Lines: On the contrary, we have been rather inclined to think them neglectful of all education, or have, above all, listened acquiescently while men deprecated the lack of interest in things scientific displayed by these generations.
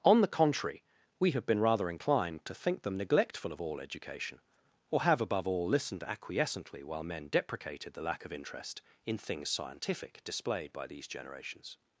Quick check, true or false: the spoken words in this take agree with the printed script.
true